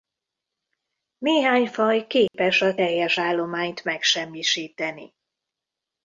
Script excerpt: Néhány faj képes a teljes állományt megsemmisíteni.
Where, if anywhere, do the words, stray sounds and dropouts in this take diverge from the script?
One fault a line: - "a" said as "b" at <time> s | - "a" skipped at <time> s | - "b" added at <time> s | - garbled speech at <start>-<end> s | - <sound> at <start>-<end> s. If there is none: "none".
- dropout at 2.3-2.3 s